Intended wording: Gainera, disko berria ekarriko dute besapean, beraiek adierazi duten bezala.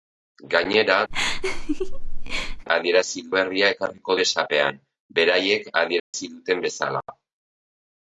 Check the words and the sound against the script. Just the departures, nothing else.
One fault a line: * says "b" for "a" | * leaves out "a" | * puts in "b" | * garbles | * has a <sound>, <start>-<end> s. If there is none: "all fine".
* has a laugh, 1.1-2.7 s
* says "adierazi" for "disko"
* leaves out "dute"
* has a dropout, 6.0-6.1 s